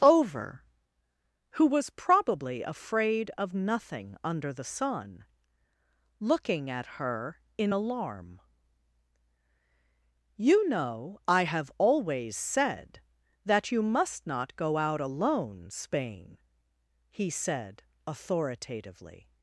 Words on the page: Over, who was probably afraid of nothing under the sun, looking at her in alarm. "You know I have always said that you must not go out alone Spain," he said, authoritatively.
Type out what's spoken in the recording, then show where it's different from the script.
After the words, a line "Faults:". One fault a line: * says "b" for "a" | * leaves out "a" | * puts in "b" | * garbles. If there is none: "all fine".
Over, who was probably afraid of nothing under the sun, looking at her in alarm. "You know I have always said that you must not go out alone Spain," he said, authoritatively.
Faults:
all fine